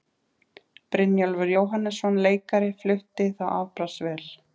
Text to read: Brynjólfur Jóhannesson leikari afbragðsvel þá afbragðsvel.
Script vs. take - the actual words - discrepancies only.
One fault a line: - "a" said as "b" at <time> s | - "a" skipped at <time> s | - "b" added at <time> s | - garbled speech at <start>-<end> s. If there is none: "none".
- "afbragðsvel" said as "flutti" at 2.8 s